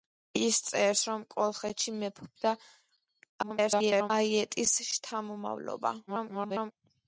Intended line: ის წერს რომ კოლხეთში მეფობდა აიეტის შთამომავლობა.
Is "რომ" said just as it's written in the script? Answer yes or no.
yes